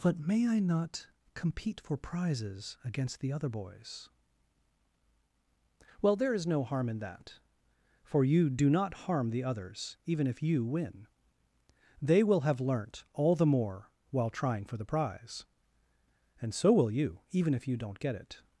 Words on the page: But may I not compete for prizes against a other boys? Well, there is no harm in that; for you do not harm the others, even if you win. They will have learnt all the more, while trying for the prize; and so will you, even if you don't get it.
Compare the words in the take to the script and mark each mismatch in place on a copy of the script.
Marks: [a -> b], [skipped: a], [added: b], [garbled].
But may I not compete for prizes against [a -> the] other boys? Well, there is no harm in that; for you do not harm the others, even if you win. They will have learnt all the more, while trying for the prize; and so will you, even if you don't get it.